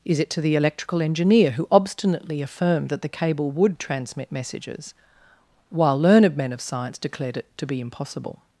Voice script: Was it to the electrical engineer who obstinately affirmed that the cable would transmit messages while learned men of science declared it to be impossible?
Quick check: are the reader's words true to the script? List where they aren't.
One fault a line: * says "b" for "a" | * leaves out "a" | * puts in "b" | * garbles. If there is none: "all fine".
* says "Is" for "Was"